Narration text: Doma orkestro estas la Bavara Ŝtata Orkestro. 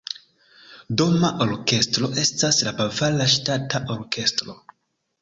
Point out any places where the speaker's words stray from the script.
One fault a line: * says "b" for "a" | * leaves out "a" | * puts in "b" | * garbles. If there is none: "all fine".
all fine